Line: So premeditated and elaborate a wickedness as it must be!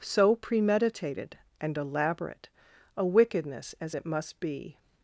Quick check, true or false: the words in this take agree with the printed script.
true